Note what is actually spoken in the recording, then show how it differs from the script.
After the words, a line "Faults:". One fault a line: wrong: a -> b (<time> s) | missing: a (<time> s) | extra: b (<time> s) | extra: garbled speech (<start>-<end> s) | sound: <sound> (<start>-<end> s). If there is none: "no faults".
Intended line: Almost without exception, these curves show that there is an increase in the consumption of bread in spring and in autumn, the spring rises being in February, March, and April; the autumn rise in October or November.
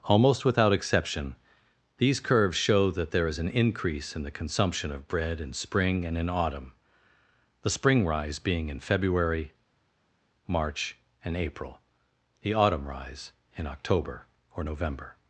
Almost without exception, these curves show that there is an increase in the consumption of bread in spring and in autumn, the spring rise being in February, March, and April; the autumn rise in October or November.
Faults:
wrong: rises -> rise (8.1 s)